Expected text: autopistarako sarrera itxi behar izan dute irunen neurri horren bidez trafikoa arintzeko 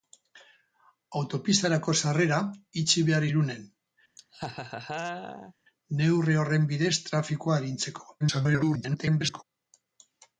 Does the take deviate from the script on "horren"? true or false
false